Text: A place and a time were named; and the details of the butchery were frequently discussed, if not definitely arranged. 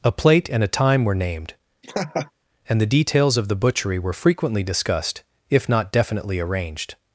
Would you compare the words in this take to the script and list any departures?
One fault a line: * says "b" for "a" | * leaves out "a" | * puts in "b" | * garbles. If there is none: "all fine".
* says "plate" for "place"